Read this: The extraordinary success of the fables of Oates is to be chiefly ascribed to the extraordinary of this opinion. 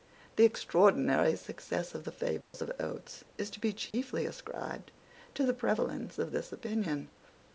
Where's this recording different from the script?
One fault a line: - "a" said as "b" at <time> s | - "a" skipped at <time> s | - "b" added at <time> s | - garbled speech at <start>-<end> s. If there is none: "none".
- "extraordinary" said as "prevalence" at 5.5 s